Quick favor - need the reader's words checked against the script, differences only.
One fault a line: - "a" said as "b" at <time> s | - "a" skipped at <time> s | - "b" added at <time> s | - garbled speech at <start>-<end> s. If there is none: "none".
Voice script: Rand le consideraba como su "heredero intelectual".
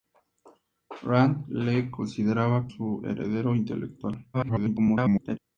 - "como" skipped at 2.7 s
- garbled speech at 4.3-5.4 s